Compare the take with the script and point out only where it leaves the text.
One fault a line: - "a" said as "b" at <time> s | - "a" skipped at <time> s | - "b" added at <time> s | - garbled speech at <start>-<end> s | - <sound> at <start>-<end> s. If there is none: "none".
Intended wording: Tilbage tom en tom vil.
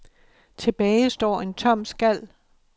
- "tom" said as "står" at 1.1 s
- "vil" said as "skal" at 1.8 s